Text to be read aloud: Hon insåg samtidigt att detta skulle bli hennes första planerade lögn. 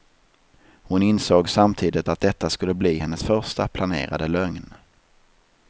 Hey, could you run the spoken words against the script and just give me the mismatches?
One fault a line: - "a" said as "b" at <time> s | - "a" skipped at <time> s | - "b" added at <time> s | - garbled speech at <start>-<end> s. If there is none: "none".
none